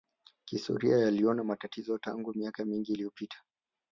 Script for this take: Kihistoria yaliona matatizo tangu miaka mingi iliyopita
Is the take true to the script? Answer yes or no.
yes